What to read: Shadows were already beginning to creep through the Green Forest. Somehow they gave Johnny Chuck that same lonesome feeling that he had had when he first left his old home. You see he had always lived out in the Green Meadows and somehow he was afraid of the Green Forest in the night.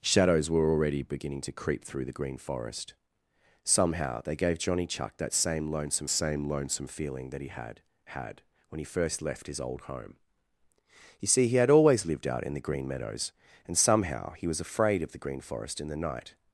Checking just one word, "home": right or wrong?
right